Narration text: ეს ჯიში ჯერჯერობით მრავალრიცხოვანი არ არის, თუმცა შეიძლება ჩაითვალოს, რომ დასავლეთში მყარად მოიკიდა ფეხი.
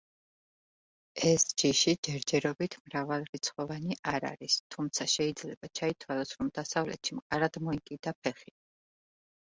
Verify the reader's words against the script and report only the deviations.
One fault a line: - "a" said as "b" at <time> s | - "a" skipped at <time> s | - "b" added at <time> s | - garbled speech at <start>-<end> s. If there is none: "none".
none